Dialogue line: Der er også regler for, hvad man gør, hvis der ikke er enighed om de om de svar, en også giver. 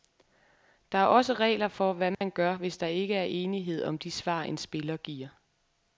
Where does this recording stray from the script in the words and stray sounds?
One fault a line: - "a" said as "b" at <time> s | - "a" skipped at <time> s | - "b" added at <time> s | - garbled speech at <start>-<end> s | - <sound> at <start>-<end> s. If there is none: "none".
- dropout at 2.1-2.2 s
- "om de" skipped at 4.1 s
- "også" said as "spiller" at 4.6 s